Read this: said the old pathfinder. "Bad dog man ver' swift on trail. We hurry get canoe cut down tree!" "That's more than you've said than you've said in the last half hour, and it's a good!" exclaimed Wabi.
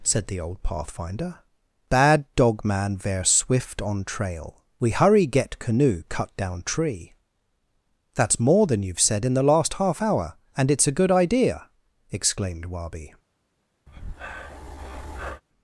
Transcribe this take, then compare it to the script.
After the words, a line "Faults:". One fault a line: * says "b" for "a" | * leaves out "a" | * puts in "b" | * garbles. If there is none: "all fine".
said the old pathfinder. "Bad dog man ver' swift on trail. We hurry get canoe cut down tree!" "That's more than you've said in the last half hour, and it's a good idea!" exclaimed Wabi.
Faults:
* leaves out "than you've said"
* puts in "idea"